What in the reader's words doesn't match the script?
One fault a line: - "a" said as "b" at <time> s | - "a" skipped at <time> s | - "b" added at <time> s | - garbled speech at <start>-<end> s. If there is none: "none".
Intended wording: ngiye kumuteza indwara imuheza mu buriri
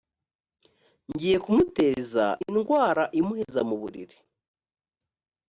none